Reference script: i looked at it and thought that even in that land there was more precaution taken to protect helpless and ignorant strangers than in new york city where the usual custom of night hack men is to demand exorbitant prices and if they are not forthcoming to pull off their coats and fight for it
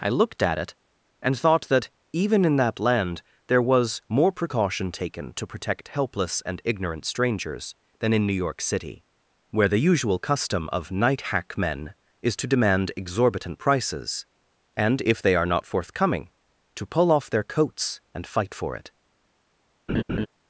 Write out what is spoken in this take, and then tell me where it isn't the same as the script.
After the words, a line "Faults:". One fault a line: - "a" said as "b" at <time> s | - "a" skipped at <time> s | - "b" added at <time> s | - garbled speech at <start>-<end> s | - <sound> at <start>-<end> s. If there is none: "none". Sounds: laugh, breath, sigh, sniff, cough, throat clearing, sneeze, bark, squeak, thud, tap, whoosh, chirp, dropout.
i looked at it and thought that even in that land there was more precaution taken to protect helpless and ignorant strangers than in new york city where the usual custom of night hack men is to demand exorbitant prices and if they are not forthcoming to pull off their coats and fight for it
Faults:
- laugh at 19.9-20.3 s